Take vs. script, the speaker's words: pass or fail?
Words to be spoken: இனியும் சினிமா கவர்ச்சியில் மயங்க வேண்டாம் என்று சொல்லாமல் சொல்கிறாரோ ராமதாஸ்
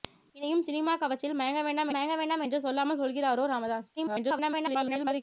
fail